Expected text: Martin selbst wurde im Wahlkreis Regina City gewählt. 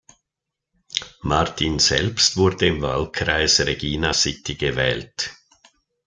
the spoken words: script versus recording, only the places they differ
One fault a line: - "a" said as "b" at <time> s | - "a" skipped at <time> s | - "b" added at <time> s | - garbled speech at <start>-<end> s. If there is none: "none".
none